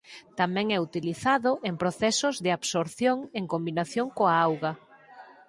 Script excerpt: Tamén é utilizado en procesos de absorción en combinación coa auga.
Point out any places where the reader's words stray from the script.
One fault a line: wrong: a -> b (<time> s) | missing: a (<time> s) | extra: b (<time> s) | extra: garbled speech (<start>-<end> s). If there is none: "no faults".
no faults